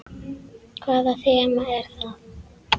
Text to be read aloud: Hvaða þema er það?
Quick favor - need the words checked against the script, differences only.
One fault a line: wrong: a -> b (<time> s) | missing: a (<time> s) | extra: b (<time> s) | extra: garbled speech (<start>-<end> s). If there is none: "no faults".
no faults